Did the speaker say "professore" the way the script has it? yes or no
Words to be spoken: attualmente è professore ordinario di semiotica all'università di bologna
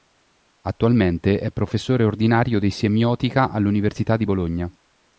yes